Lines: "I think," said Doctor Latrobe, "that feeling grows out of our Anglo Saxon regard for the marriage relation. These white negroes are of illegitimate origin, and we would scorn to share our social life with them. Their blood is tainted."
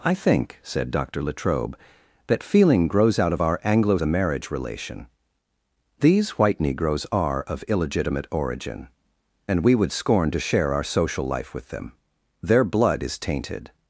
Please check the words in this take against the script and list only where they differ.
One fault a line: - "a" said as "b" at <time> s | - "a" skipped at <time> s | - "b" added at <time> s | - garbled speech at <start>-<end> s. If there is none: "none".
- "Saxon regard for" skipped at 4.0 s